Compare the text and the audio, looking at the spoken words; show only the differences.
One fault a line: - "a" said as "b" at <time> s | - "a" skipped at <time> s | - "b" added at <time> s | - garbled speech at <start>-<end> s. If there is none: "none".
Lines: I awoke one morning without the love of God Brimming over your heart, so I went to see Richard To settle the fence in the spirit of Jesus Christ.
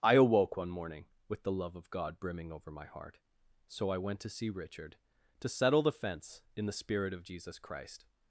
- "without" said as "with" at 1.3 s
- "your" said as "my" at 2.7 s